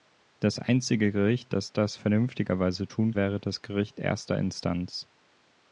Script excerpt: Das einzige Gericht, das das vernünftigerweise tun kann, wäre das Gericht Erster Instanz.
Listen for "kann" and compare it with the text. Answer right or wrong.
wrong